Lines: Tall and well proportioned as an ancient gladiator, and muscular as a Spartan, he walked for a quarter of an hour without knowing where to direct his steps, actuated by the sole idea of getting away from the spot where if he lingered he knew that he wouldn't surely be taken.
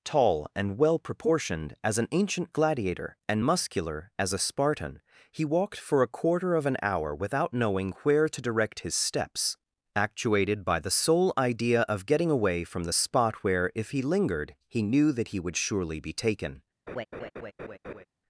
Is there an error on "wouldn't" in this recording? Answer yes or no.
yes